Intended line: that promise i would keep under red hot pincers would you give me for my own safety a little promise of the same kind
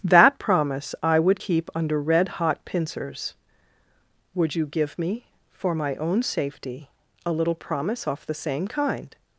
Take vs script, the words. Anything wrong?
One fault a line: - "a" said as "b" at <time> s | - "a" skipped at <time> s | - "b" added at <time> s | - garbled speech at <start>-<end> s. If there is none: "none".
- "of" said as "off" at 8.1 s